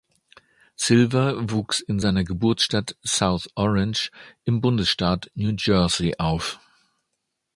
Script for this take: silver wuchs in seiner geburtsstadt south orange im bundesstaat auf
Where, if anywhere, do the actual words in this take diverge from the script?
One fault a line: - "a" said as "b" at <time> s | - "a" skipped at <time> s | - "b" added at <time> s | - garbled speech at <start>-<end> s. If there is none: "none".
- "new jersey" added at 5.3 s